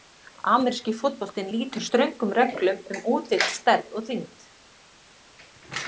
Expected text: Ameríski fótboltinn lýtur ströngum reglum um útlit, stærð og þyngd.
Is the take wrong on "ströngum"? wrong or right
right